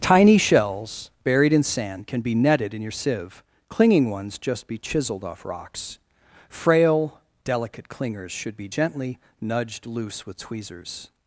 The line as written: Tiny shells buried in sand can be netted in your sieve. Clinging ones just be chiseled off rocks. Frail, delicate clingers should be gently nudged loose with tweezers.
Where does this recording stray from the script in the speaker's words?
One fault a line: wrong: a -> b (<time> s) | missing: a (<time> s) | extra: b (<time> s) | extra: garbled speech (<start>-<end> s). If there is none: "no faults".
no faults